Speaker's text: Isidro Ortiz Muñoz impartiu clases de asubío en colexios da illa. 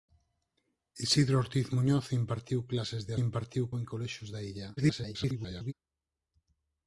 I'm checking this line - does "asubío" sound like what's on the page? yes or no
no